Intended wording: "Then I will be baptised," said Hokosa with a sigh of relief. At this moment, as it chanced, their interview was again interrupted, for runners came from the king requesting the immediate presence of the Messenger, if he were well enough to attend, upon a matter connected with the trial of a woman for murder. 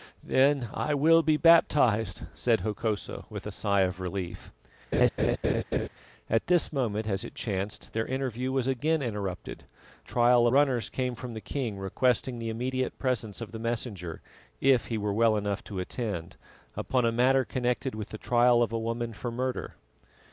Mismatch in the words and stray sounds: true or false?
true